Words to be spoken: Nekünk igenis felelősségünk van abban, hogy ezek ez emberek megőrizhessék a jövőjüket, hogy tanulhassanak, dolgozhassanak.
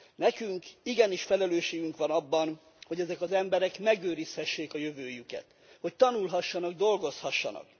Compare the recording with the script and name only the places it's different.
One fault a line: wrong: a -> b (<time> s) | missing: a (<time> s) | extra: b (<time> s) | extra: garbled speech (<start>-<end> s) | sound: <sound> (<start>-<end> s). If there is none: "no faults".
wrong: ez -> az (3.2 s)